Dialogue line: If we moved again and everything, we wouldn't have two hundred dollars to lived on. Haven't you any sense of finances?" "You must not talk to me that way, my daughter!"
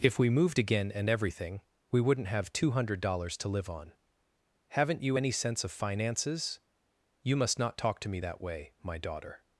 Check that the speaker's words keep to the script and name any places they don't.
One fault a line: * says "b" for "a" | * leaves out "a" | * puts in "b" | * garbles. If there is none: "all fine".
* says "live" for "lived"